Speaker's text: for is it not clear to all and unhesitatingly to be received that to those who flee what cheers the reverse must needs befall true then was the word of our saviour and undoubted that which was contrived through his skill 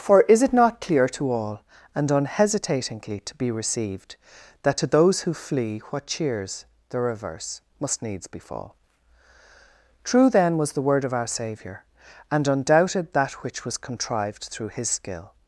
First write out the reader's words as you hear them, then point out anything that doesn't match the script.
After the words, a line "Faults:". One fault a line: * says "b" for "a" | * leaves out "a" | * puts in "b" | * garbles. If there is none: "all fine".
for is it not clear to all and unhesitatingly to be received that to those who flee what cheers the reverse must needs befall true then was the word of our saviour and undoubted that which was contrived through his skill
Faults:
all fine